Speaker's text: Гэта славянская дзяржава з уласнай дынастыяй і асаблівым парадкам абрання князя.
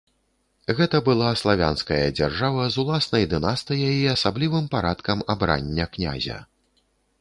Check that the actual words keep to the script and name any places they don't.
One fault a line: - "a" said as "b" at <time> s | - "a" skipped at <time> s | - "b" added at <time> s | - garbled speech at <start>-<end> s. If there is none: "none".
- "была" added at 1.1 s